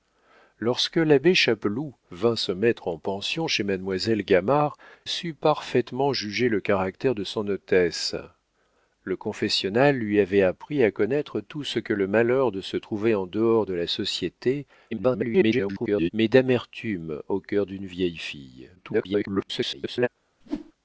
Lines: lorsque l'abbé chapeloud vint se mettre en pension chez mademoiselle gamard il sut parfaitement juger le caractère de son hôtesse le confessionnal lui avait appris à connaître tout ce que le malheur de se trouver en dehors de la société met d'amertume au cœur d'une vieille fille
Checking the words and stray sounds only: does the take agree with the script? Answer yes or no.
no